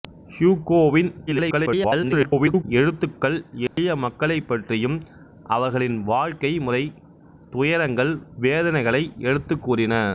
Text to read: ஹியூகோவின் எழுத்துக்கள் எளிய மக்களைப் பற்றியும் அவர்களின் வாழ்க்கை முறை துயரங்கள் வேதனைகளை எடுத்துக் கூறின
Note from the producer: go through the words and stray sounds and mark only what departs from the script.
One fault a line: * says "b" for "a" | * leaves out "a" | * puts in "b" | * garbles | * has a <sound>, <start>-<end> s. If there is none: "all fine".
* garbles
* has a dropout, 3.7-3.8 s